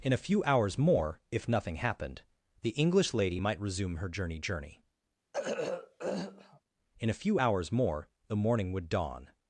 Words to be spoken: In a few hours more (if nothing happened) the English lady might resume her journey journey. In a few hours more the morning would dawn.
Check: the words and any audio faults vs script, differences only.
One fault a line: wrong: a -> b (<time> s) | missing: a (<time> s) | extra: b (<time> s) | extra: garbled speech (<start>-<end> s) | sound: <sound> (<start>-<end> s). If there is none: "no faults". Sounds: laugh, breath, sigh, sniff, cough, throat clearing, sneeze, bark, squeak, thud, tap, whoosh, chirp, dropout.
sound: throat clearing (5.3-6.6 s)